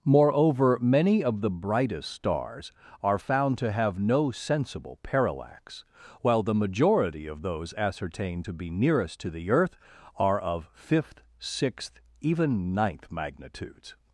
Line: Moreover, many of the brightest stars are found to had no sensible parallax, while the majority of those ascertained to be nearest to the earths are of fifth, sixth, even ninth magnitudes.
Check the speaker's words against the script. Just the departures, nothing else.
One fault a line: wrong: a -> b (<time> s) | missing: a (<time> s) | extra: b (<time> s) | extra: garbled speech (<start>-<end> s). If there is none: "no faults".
wrong: had -> have (3.7 s)
wrong: earths -> earth (9.5 s)